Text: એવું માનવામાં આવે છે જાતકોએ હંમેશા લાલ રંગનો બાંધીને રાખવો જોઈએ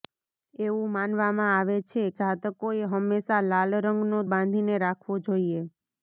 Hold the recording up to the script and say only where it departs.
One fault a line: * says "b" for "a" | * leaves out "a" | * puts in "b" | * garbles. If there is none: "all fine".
all fine